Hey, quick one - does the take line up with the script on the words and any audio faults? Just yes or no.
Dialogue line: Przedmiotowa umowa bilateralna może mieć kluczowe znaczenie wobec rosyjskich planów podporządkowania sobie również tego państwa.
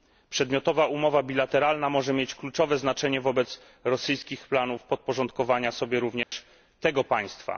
no